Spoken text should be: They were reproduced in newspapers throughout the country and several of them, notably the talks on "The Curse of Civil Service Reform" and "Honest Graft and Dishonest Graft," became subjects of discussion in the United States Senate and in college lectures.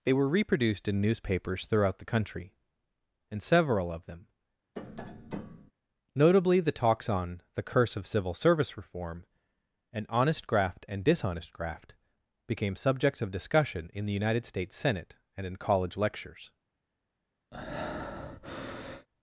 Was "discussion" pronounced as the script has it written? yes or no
yes